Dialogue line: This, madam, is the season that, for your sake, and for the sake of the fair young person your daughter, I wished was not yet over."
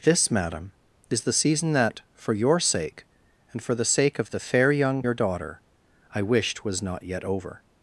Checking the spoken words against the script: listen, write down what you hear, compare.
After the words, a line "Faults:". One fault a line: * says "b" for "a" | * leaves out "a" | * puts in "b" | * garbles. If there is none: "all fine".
This, madam, is the season that, for your sake, and for the sake of the fair young your daughter, I wished was not yet over."
Faults:
* leaves out "person"